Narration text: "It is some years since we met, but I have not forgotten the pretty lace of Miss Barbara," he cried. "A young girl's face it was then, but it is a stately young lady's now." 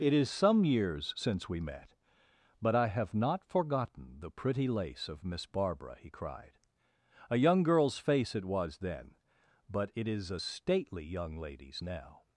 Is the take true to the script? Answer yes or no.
yes